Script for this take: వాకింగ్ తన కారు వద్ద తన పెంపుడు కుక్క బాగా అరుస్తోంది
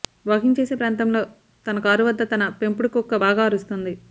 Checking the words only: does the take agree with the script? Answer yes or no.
no